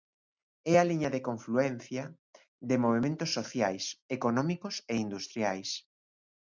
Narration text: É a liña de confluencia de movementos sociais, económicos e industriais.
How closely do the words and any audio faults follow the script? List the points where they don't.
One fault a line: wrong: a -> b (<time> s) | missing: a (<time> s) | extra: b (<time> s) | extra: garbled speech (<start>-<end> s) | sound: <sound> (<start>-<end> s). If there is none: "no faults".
no faults